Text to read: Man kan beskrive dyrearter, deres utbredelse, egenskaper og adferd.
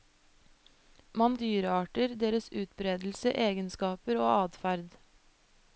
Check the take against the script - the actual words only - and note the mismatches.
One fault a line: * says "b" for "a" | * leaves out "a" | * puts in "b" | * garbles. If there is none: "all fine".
* leaves out "kan beskrive"